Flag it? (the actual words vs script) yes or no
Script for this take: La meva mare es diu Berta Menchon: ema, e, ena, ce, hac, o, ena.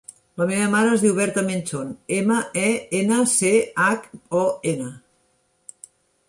no